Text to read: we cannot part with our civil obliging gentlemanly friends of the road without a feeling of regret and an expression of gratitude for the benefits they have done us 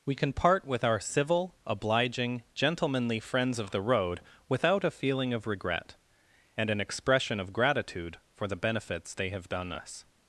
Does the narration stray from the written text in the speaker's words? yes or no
yes